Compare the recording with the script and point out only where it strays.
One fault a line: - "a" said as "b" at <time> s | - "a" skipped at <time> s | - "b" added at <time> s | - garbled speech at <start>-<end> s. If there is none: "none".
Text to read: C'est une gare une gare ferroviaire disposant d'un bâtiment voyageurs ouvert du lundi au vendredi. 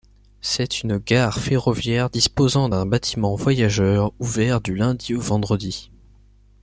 - "une gare" skipped at 1.4 s